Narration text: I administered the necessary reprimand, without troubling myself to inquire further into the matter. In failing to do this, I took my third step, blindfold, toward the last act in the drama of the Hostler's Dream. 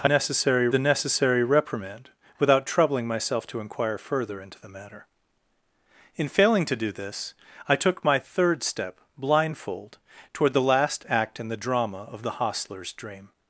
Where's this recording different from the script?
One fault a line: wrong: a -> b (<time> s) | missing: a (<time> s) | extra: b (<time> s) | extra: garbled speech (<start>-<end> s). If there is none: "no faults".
wrong: administered -> necessary (0.0 s)